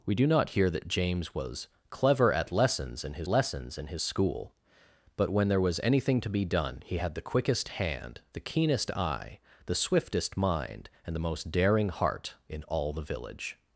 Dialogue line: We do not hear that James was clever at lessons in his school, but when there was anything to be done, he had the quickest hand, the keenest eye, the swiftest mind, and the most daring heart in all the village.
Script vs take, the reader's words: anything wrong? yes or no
yes